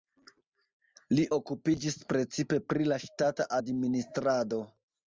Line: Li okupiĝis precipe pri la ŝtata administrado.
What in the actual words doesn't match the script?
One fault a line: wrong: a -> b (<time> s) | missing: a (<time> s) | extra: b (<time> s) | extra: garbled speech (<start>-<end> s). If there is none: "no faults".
no faults